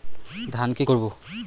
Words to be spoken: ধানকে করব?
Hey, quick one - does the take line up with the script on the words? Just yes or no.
yes